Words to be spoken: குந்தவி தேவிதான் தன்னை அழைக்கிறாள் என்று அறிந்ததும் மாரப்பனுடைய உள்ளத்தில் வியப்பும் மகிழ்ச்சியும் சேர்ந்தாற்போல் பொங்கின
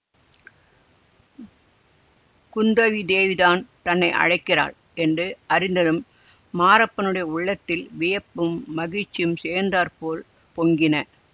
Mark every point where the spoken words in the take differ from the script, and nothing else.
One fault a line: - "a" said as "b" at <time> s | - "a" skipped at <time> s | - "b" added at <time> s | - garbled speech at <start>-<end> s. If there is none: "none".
none